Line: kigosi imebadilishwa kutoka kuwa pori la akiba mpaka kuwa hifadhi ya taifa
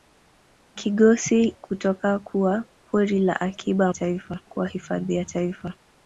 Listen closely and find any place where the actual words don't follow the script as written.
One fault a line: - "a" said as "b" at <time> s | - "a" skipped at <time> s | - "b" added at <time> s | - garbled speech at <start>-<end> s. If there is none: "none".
- "imebadilishwa" skipped at 1.4 s
- "mpaka" said as "taifa" at 3.9 s